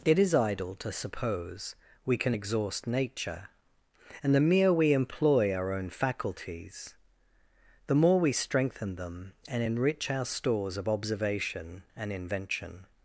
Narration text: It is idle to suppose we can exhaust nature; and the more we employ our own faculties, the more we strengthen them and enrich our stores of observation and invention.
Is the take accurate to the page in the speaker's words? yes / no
no